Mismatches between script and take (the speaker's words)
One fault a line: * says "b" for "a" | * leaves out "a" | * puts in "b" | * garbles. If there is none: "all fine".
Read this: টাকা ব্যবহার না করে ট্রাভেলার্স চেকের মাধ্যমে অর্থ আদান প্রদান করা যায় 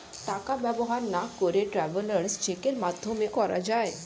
* leaves out "অর্থ আদান প্রদান"